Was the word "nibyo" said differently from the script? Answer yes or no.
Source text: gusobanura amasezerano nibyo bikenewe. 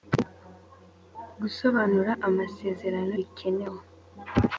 yes